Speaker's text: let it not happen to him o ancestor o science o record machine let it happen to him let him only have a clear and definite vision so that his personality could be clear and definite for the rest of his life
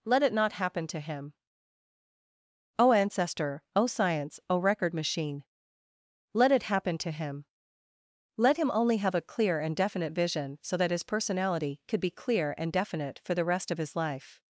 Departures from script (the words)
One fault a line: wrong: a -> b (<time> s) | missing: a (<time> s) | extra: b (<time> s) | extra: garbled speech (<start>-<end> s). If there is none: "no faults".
no faults